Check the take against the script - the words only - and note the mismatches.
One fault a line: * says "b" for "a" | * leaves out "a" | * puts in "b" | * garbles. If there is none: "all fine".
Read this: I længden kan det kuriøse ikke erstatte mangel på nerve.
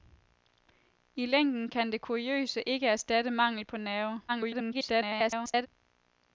* garbles